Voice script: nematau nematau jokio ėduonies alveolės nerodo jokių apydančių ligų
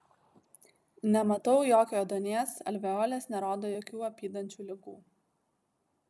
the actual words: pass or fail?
fail